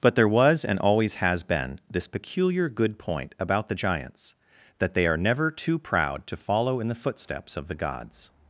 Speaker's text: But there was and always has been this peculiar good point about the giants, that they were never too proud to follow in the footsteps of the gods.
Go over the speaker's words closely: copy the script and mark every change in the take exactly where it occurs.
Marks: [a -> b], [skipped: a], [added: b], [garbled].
But there was and always has been this peculiar good point about the giants, that they [were -> are] never too proud to follow in the footsteps of the gods.